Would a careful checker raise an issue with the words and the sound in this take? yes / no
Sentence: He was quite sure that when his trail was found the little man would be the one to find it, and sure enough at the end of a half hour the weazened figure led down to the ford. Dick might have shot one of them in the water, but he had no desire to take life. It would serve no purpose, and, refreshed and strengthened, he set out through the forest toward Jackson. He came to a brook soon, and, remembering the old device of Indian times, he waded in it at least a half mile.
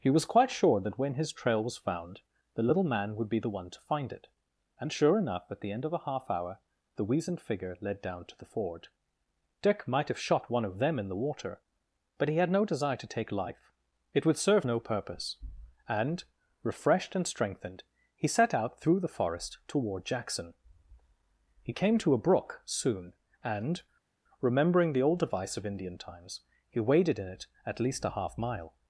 no